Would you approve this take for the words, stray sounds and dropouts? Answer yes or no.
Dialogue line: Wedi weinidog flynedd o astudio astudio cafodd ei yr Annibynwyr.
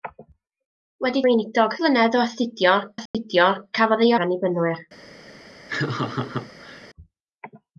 no